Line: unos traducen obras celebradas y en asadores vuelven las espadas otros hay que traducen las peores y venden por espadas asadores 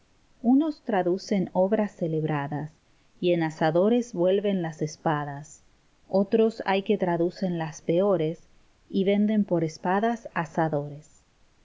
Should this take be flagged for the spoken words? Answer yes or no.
no